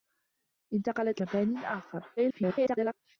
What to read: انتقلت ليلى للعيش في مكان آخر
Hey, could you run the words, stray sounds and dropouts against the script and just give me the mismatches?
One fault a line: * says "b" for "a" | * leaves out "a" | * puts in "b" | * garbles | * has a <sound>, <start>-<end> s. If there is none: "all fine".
* leaves out "ليلى للعيش في"
* garbles